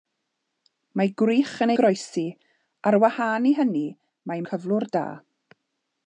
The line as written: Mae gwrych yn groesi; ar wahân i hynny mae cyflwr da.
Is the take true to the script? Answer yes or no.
yes